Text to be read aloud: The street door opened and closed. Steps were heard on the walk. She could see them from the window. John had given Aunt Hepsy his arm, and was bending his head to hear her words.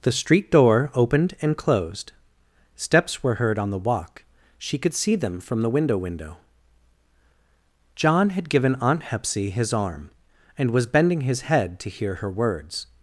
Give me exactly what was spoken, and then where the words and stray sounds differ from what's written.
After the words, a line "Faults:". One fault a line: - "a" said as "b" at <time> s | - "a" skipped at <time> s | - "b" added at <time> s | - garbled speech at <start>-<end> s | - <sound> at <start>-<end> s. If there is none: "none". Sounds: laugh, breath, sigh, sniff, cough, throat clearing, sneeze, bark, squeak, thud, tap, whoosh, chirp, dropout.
The street door opened and closed. Steps were heard on the walk. She could see them from the window window. John had given Aunt Hepsy his arm, and was bending his head to hear her words.
Faults:
- "window" added at 6.0 s